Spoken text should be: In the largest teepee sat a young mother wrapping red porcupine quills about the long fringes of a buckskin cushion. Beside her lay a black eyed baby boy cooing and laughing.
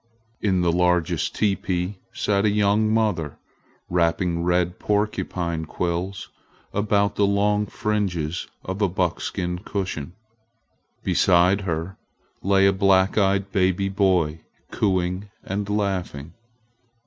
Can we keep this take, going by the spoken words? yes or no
yes